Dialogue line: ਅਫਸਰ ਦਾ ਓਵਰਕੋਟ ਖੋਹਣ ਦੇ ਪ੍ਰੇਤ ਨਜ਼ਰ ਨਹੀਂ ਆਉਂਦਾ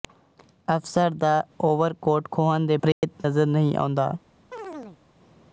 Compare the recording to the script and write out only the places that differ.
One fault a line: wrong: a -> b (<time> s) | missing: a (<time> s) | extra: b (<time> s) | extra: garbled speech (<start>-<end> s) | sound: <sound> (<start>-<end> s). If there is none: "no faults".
sound: dropout (2.9-3.0 s)
sound: chirp (4.5-5.0 s)